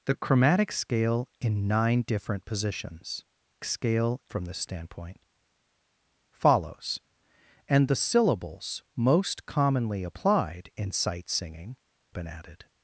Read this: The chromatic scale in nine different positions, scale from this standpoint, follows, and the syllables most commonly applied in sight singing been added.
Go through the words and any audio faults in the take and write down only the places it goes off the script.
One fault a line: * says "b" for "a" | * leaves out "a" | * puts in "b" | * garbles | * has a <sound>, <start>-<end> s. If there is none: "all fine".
all fine